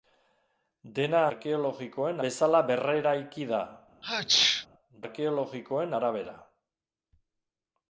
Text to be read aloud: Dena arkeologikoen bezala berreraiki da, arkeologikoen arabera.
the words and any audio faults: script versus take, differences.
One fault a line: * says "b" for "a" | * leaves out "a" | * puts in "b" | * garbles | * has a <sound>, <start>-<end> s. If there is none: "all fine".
* has a sneeze, 4.0-4.7 s